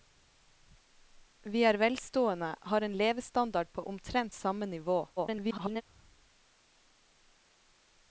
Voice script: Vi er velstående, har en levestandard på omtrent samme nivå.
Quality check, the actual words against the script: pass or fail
fail